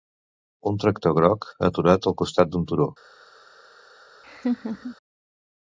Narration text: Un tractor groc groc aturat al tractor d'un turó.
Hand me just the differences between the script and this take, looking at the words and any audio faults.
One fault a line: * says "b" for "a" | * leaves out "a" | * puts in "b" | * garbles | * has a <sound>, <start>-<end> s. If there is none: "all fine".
* leaves out "groc"
* says "costat" for "tractor"
* has a laugh, 4.2-5.0 s